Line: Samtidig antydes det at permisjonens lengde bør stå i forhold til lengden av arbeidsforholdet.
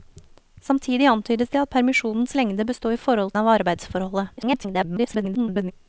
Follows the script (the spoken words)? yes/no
no